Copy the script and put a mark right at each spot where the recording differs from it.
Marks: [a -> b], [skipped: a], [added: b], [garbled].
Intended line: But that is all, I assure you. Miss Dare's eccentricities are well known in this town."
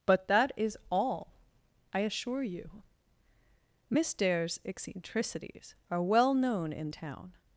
But that is all, I assure you. Miss Dare's eccentricities are well known in [skipped: this] town."